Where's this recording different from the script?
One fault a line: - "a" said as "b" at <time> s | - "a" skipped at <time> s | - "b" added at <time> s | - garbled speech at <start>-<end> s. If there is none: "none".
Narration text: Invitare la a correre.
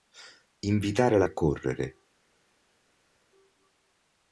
none